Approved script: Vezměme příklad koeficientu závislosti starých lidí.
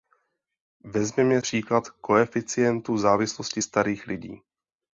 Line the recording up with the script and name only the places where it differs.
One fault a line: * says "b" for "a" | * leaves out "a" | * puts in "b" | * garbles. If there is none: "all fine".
all fine